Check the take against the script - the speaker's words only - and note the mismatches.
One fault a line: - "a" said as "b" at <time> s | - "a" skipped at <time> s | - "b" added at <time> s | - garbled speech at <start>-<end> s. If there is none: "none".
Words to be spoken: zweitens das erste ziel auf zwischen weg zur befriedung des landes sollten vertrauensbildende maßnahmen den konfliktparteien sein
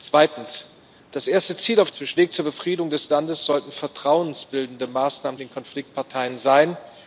none